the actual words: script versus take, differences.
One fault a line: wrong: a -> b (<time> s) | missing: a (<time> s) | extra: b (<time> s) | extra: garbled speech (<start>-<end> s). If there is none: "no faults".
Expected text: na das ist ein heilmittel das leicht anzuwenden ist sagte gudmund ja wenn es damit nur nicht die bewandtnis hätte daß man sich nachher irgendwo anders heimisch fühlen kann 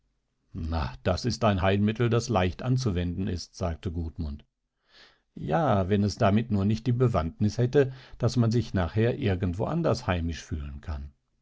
no faults